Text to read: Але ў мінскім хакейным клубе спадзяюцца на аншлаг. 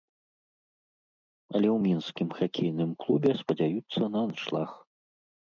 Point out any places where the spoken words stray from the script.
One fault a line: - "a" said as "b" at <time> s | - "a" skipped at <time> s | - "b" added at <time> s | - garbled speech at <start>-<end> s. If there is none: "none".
none